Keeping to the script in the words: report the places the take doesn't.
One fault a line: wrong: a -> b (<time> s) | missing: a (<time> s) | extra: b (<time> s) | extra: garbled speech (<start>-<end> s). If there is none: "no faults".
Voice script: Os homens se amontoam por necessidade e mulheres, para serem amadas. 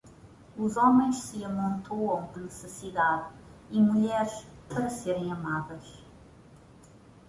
missing: por (2.3 s)